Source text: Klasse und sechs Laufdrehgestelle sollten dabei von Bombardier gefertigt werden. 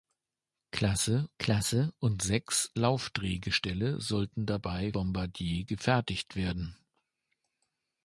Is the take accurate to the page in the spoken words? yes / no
no